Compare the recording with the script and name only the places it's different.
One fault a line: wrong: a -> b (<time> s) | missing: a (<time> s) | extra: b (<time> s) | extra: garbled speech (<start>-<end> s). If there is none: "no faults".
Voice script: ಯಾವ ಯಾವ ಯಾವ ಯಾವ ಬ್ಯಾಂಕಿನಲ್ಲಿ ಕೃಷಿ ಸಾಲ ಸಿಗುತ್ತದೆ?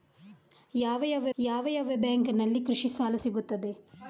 no faults